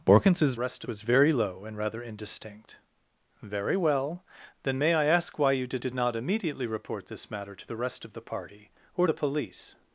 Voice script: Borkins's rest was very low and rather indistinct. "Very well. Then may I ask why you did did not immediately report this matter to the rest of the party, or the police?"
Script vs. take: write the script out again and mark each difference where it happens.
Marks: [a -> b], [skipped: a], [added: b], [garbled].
Borkins's rest was very low and rather indistinct. "Very well. Then may I ask why you did did not immediately report this matter to the rest of the party, or the police?"